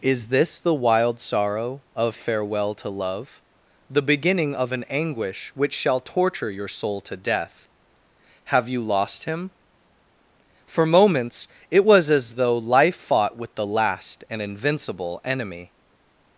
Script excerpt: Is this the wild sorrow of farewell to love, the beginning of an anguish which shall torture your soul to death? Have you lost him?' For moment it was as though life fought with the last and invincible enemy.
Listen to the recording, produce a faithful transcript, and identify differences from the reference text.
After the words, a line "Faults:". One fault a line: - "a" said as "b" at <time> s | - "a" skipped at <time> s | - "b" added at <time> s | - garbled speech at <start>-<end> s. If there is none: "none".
Is this the wild sorrow of farewell to love, the beginning of an anguish which shall torture your soul to death? Have you lost him?' For moments it was as though life fought with the last and invincible enemy.
Faults:
- "moment" said as "moments" at 10.9 s